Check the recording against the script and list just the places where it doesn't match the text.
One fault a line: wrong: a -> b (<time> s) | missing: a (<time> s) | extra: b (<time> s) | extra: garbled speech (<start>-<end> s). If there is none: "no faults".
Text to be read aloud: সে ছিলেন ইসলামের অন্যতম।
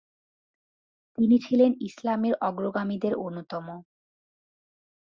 wrong: সে -> তিনি (1.2 s)
extra: অগ্রগামীদের (2.4 s)